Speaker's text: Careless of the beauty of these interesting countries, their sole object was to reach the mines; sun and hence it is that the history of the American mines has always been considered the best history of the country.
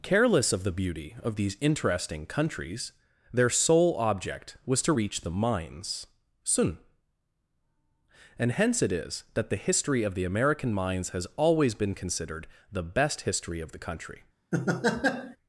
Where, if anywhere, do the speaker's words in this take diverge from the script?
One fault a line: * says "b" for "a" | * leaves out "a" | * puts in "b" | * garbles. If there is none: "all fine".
all fine